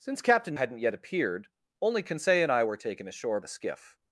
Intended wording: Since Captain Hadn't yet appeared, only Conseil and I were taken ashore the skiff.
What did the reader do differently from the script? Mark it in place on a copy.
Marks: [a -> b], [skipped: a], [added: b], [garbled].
Since Captain Hadn't yet appeared, only Conseil and I were taken ashore the skiff.